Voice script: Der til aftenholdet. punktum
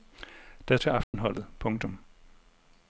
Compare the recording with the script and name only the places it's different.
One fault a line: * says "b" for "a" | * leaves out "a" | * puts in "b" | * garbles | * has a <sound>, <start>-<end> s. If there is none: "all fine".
* has a dropout, 1.0-1.1 s